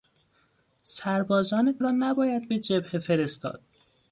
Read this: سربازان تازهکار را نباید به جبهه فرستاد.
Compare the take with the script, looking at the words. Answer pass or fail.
fail